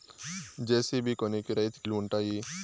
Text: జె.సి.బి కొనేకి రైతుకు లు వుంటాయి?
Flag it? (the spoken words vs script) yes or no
no